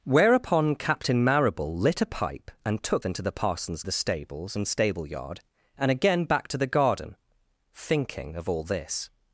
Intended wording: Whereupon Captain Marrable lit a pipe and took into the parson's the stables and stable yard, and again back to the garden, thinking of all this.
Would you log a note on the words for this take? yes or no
no